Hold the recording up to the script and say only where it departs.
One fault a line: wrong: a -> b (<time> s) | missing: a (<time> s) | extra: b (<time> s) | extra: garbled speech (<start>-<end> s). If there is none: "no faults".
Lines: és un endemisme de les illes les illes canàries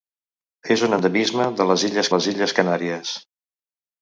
no faults